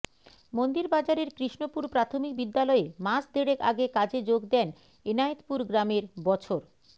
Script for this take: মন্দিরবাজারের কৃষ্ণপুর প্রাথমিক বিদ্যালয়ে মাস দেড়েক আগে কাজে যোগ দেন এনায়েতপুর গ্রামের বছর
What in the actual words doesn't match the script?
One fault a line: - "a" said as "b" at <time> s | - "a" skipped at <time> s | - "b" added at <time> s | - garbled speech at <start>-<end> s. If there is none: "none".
none